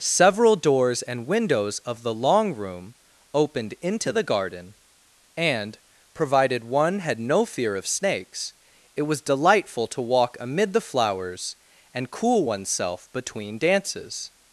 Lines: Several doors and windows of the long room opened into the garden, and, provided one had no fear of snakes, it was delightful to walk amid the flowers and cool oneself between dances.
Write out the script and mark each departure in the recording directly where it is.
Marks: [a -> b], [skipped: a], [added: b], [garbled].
Several doors and windows of the long room opened into the garden, and, provided one had no fear of snakes, it was delightful to walk amid the flowers and cool oneself between dances.